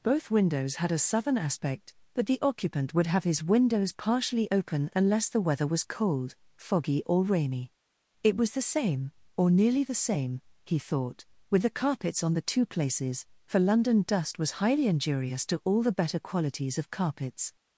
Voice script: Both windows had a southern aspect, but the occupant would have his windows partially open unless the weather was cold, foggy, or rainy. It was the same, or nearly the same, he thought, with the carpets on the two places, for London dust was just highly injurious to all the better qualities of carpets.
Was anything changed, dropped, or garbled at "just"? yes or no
yes